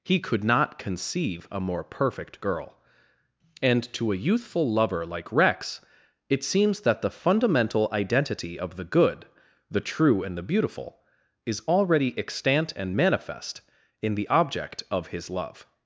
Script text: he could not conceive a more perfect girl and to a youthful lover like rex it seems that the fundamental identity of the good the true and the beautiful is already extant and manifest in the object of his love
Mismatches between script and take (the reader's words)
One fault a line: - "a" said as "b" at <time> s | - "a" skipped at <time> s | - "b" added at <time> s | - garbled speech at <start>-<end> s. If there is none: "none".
none